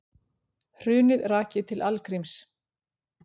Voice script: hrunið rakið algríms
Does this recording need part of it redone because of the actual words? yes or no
yes